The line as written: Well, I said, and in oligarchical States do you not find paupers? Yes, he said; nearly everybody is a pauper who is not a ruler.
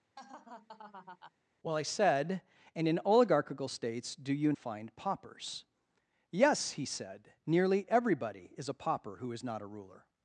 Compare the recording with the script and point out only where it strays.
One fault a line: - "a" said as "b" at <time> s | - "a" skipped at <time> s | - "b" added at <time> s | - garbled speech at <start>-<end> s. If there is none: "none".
- "not" skipped at 4.5 s